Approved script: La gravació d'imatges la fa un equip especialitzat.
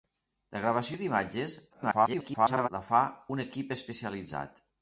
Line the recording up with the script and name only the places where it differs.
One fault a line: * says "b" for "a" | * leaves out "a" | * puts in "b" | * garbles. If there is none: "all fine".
* garbles